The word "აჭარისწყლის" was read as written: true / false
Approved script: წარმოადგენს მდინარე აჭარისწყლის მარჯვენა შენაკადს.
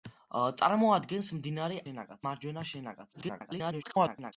false